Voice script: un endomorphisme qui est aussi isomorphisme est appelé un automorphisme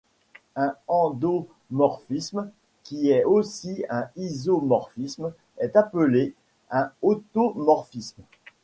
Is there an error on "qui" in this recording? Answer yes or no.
no